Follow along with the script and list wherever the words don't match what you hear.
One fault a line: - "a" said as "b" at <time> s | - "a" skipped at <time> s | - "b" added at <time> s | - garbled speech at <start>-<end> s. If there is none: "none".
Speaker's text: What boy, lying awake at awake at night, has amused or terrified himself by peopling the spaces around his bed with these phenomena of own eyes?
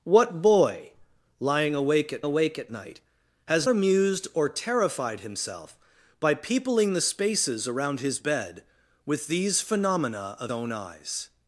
none